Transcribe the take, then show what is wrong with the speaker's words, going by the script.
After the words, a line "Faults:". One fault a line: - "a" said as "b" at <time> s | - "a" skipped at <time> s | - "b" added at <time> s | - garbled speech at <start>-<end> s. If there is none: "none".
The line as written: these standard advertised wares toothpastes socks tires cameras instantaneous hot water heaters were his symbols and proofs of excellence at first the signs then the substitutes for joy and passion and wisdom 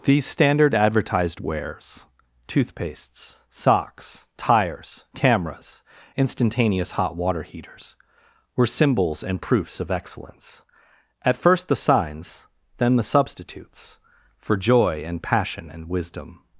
these standard advertised wares toothpastes socks tires cameras instantaneous hot water heaters were symbols and proofs of excellence at first the signs then the substitutes for joy and passion and wisdom
Faults:
- "his" skipped at 8.7 s